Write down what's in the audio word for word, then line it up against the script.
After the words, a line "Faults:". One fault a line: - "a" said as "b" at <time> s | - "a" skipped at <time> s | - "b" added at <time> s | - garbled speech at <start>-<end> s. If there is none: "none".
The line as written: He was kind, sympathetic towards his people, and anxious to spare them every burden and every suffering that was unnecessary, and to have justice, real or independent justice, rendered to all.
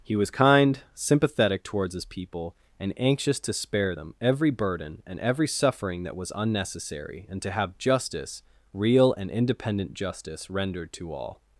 He was kind, sympathetic towards his people, and anxious to spare them every burden and every suffering that was unnecessary, and to have justice, real and independent justice, rendered to all.
Faults:
- "or" said as "and" at 9.1 s